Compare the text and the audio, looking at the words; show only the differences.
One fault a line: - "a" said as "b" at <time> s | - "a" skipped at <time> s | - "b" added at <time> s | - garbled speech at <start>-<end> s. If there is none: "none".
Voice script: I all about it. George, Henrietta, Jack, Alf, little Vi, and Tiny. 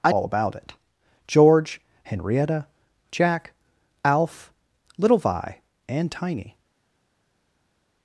none